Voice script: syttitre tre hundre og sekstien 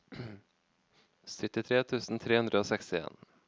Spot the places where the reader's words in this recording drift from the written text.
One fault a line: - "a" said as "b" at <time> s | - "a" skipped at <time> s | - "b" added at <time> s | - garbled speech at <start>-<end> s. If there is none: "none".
- "tusen" added at 1.9 s